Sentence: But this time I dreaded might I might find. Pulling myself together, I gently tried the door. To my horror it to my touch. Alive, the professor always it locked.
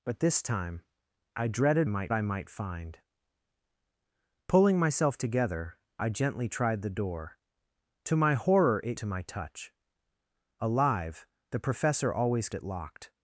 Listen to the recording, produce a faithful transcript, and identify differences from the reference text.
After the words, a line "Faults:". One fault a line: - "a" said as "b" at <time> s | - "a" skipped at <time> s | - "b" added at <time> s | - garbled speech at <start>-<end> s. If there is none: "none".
But this time I dreaded might I might find. Pulling myself together, I gently tried the door. To my horror it to my touch. Alive, the professor always it locked.
Faults:
none